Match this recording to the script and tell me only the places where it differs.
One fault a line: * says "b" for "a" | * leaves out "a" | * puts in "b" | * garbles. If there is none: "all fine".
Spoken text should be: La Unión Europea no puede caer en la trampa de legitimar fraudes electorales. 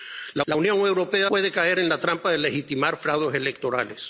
* puts in "la"
* leaves out "no"